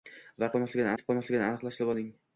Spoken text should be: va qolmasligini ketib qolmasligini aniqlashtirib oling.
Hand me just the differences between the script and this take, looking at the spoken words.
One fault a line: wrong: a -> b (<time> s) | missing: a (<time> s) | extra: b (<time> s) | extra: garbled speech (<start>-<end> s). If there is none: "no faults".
no faults